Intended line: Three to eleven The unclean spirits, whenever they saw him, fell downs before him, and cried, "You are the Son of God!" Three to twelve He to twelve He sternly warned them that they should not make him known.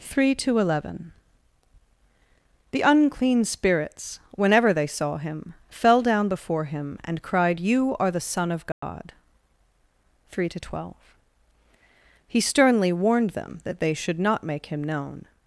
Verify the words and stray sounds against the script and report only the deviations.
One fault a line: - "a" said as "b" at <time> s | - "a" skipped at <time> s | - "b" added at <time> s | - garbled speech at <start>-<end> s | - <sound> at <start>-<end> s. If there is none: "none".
- "downs" said as "down" at 6.0 s
- dropout at 8.7-8.8 s
- "to twelve He" skipped at 12.4 s